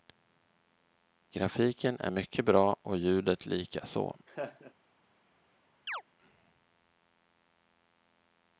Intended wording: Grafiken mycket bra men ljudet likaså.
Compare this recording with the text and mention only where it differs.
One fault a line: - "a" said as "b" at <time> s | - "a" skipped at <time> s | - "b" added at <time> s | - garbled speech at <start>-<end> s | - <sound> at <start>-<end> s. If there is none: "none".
- "är" added at 2.0 s
- "men" said as "och" at 2.8 s
- laugh at 4.3-4.7 s
- chirp at 5.9-6.0 s